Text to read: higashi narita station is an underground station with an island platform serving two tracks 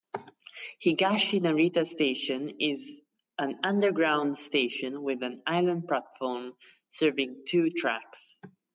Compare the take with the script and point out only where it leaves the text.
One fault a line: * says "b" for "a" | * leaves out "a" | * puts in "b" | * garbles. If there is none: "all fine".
all fine